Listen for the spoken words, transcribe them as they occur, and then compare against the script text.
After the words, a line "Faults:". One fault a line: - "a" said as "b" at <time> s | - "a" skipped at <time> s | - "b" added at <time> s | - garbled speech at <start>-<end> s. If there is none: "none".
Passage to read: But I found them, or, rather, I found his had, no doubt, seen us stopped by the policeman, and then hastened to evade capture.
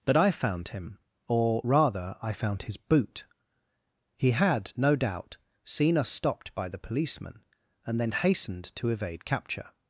But I found him, or, rather, I found his boot. He had, no doubt, seen us stopped by the policeman, and then hastened to evade capture.
Faults:
- "them" said as "him" at 0.7 s
- "boot He" added at 2.8 s